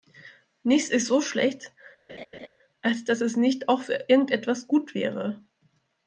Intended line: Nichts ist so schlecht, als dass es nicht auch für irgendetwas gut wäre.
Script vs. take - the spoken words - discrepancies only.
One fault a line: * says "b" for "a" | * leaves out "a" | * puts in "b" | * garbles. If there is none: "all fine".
all fine